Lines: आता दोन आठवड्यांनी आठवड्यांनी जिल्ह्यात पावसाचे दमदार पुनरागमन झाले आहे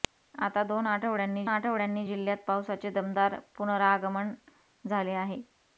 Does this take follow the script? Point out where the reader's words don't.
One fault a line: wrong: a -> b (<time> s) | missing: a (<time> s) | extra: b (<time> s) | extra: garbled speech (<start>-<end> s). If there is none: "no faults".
no faults